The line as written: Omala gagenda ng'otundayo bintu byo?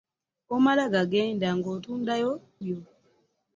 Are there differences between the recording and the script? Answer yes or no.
yes